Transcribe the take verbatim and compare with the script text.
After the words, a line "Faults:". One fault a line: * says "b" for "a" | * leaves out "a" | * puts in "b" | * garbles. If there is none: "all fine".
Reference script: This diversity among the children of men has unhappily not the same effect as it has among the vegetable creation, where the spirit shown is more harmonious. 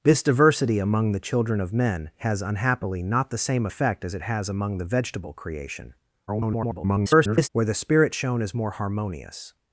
This diversity among the children of men has unhappily not the same effect as it has among the vegetable creation, [garbled] where the spirit shown is more harmonious.
Faults:
* garbles